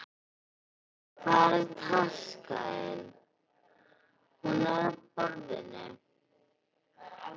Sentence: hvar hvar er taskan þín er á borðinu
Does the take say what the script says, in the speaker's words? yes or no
no